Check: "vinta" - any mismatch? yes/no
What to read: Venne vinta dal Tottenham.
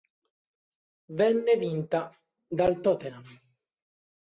no